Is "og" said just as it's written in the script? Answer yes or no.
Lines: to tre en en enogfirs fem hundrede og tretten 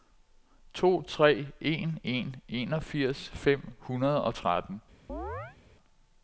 yes